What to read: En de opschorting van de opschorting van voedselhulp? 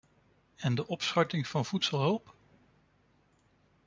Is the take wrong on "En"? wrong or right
right